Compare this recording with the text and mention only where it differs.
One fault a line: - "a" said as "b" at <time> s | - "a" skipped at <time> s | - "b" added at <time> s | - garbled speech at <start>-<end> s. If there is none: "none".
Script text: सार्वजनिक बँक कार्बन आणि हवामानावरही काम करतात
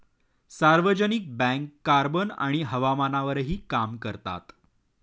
none